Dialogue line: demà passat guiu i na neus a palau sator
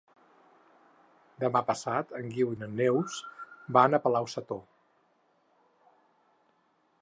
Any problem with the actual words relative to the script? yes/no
yes